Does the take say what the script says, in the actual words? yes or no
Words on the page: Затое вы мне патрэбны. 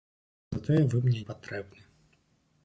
yes